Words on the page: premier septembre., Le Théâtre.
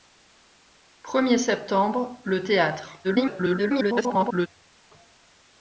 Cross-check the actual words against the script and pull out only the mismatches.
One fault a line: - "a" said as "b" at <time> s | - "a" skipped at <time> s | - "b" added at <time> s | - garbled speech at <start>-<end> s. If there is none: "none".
- garbled speech at 3.0-4.5 s